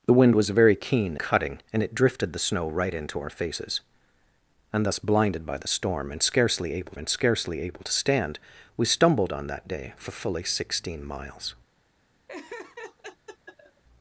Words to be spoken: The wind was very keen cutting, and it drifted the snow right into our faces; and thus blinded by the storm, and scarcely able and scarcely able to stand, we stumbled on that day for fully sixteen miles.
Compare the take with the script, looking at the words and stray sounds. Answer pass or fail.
fail